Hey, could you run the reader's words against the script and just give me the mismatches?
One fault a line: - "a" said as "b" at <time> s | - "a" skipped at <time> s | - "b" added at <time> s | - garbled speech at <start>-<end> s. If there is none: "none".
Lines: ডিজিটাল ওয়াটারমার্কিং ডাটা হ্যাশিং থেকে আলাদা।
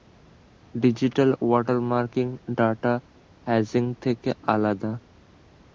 none